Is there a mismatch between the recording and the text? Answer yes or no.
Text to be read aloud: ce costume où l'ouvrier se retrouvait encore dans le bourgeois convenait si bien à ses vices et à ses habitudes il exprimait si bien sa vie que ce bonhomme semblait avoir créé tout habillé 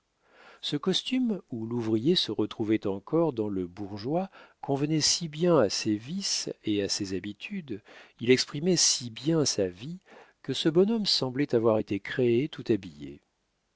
yes